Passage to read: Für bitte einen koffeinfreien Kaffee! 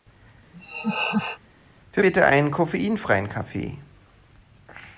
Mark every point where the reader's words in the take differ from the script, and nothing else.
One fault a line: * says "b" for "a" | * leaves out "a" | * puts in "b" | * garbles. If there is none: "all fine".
all fine